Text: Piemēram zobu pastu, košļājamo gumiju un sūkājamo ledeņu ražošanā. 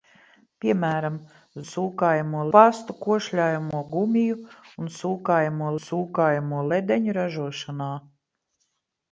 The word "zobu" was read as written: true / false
false